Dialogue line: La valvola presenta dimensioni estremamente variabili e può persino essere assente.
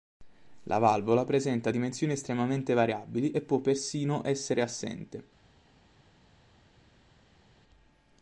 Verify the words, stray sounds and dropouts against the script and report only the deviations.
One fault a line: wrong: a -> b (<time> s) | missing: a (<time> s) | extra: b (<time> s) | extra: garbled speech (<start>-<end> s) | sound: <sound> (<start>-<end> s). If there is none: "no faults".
no faults